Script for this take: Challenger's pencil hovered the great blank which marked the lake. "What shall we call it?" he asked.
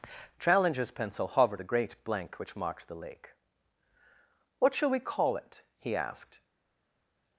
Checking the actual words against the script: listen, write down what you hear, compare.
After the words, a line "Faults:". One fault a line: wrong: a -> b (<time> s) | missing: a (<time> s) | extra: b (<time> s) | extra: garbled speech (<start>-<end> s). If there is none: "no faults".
Challenger's pencil hovered the great blank which marked the lake. "What shall we call it?" he asked.
Faults:
no faults